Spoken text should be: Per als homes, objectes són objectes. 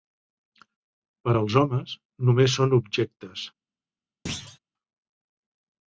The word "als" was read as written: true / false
true